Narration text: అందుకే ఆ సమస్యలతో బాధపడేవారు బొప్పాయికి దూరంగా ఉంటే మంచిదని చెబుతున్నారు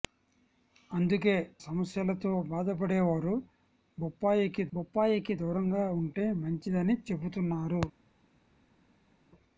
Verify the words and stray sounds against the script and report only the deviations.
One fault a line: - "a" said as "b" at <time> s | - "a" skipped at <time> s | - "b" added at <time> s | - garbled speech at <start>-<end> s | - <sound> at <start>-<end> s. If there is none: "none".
- "ఆ" skipped at 1.4 s
- "బొప్పాయికి" added at 4.7 s